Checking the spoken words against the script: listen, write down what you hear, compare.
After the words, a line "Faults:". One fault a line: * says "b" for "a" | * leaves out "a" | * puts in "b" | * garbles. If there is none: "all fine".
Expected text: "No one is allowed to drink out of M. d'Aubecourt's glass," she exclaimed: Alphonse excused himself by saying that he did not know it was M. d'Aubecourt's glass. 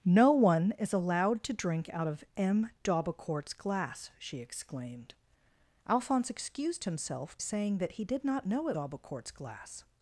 "No one is allowed to drink out of M. d'Aubecourt's glass," she exclaimed: Alphonse excused himself saying that he did not know it. d'Aubecourt's glass.
Faults:
* leaves out "by"
* leaves out "was M"